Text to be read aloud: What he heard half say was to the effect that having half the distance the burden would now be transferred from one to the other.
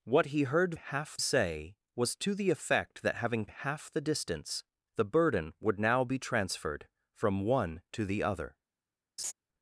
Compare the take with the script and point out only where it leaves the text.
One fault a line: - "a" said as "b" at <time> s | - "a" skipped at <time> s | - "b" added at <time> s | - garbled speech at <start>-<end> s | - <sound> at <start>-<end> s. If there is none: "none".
- laugh at 9.2-9.3 s